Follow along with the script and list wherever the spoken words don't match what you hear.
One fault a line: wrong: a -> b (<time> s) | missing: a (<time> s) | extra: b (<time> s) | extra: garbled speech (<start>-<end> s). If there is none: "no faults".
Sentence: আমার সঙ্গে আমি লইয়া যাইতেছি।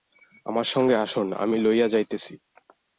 extra: আসুন (0.9 s)